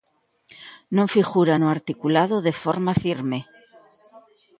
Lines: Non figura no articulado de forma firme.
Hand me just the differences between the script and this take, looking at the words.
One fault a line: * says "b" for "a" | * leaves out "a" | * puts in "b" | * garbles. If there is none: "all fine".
all fine